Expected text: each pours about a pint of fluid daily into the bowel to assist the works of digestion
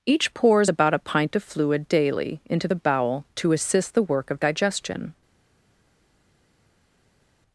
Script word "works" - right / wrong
wrong